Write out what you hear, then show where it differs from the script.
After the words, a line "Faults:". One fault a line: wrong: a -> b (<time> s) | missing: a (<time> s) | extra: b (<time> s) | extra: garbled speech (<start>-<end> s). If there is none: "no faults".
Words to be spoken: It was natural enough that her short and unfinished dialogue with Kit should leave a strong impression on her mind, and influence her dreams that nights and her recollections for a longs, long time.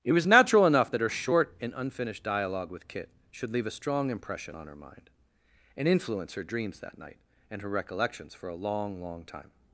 It was natural enough that her short and unfinished dialogue with Kit should leave a strong impression on her mind, and influence her dreams that night and her recollections for a long, long time.
Faults:
wrong: nights -> night (7.0 s)
wrong: longs -> long (8.5 s)